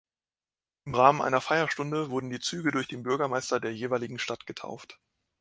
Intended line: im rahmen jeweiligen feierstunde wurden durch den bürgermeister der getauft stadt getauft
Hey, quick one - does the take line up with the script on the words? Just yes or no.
no